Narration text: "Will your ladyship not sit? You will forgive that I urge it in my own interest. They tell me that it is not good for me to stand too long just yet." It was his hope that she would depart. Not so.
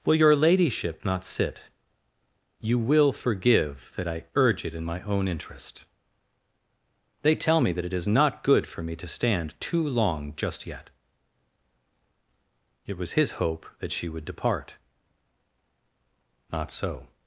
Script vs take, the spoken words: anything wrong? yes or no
no